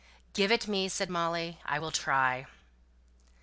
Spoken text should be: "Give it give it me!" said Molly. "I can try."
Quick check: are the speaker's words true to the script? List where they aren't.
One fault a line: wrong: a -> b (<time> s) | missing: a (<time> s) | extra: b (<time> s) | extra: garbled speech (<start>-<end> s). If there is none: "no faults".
missing: give it (0.7 s)
wrong: can -> will (1.8 s)